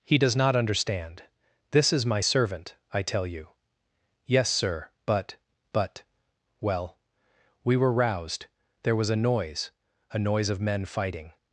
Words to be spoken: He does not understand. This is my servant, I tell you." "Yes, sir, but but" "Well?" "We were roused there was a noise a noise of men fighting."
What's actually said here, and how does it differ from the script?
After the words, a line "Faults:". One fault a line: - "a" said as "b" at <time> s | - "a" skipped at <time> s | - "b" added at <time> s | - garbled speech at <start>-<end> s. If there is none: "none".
He does not understand. This is my servant, I tell you." "Yes, sir, but but" "Well?" "We were roused there was a noise a noise of men fighting."
Faults:
none